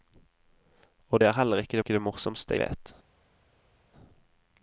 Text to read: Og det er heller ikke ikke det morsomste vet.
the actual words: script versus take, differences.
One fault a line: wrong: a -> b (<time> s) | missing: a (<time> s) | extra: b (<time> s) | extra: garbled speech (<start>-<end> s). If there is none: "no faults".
no faults